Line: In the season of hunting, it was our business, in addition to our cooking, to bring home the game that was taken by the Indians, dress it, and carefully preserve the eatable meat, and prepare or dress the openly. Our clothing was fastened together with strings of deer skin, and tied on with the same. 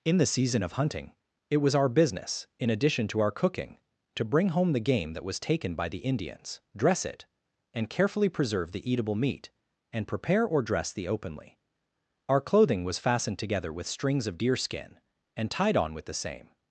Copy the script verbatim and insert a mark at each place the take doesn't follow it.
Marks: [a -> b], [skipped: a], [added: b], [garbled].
In the season of hunting, it was our business, in addition to our cooking, to bring home the game that was taken by the Indians, dress it, and carefully preserve the eatable meat, and prepare or dress the openly. Our clothing was fastened together with strings of deer skin, and tied on with the same.